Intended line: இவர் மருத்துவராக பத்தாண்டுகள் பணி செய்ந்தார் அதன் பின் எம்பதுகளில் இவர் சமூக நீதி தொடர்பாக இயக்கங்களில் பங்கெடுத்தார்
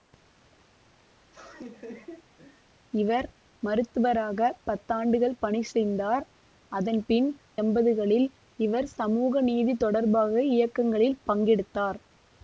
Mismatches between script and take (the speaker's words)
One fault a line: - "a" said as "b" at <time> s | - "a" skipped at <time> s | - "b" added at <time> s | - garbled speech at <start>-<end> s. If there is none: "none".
none